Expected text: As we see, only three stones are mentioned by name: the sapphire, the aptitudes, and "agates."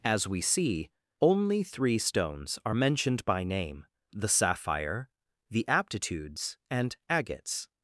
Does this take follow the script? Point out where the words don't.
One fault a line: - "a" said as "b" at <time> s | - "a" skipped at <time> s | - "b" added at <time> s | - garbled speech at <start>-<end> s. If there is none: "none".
none